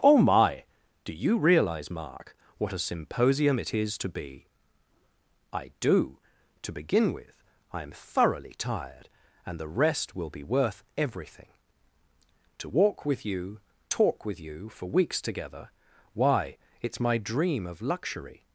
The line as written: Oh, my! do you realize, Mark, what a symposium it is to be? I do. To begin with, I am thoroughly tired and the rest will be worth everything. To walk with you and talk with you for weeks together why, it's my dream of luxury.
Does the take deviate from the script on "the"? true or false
false